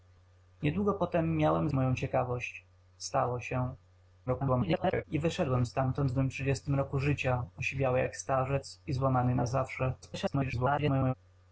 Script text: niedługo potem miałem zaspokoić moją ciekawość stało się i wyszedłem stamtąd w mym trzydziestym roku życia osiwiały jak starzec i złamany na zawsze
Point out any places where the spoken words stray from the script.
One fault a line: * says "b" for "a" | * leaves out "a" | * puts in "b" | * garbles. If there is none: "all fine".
* leaves out "zaspokoić"
* garbles
* garbles